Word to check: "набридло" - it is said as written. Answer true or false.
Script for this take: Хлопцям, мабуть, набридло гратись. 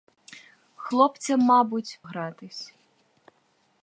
false